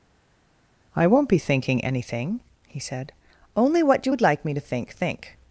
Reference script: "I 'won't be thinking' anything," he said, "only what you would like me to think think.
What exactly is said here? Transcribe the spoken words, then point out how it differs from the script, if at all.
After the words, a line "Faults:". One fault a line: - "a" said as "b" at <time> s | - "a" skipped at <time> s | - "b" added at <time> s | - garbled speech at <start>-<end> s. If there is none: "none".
"I 'won't be thinking' anything," he said, "only what you would like me to think think.
Faults:
none